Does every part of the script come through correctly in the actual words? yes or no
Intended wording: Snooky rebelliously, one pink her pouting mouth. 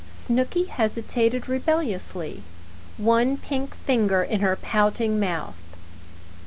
no